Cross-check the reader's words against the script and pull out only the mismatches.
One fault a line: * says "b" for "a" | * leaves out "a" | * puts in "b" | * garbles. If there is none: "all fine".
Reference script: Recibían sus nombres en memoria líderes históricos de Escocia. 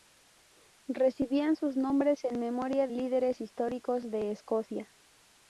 all fine